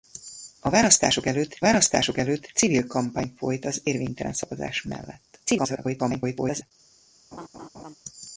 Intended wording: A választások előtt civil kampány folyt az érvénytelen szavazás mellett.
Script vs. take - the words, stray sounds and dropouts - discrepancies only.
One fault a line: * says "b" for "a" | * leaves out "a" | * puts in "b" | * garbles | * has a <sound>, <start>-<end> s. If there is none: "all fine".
* puts in "választások előtt"
* garbles
* has a laugh, 7.3-7.9 s